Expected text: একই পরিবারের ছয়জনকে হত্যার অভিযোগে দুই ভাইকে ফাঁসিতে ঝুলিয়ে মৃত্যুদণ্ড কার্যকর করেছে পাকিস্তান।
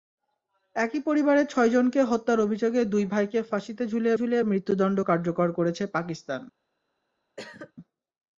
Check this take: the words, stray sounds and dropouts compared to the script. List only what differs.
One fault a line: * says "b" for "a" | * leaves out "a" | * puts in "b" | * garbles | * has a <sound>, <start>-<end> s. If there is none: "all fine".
* puts in "ঝুলিয়ে"
* has a cough, 7.4-7.7 s